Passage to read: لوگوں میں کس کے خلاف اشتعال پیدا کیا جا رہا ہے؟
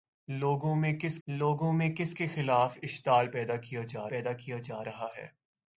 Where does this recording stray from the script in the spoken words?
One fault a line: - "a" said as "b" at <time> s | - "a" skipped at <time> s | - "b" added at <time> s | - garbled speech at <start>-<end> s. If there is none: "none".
- "لوگوں میں کس" added at 1.3 s
- "پیدا کیا جا" added at 4.1 s